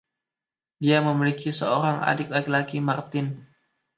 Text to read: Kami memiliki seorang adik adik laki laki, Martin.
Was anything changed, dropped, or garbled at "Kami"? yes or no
yes